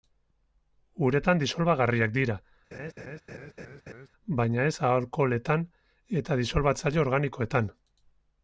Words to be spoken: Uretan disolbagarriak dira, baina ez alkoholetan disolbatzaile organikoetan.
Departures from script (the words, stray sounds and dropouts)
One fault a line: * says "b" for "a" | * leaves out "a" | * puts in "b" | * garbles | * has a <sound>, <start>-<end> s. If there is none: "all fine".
* has a laugh, 2.7-4.1 s
* puts in "eta"